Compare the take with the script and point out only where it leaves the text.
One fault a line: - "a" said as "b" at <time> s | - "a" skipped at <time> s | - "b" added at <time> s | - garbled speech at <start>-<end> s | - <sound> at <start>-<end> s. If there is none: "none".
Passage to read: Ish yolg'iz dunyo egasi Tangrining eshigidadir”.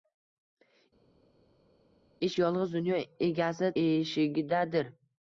- "Tangrining" skipped at 3.7 s